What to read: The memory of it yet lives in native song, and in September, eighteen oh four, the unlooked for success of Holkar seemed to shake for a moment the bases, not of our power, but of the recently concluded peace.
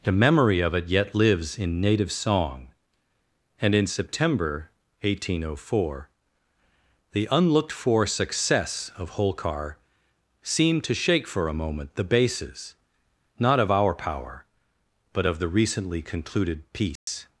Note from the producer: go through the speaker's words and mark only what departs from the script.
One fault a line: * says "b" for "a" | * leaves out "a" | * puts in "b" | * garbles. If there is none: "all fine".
all fine